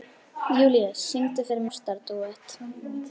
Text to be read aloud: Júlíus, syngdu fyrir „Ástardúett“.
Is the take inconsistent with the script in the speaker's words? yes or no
no